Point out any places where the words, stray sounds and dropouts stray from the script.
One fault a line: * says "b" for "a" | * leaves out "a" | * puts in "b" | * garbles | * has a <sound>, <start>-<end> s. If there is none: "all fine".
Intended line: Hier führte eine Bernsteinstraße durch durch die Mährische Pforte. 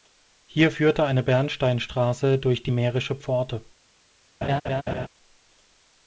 * leaves out "durch"
* has a laugh, 4.4-5.1 s